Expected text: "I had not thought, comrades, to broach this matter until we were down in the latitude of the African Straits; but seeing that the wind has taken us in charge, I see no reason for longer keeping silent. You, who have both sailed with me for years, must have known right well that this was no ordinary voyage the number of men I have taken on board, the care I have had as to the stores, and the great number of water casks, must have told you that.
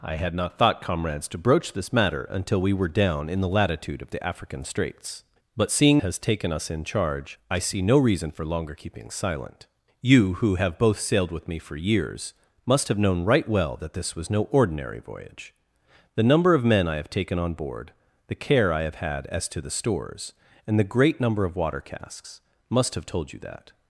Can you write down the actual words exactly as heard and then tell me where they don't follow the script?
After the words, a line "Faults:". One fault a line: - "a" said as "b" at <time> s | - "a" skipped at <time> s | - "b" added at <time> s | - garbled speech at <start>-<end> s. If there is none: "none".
"I had not thought, comrades, to broach this matter until we were down in the latitude of the African Straits; but seeing has taken us in charge, I see no reason for longer keeping silent. You, who have both sailed with me for years, must have known right well that this was no ordinary voyage the number of men I have taken on board, the care I have had as to the stores, and the great number of water casks, must have told you that.
Faults:
- "that the wind" skipped at 6.0 s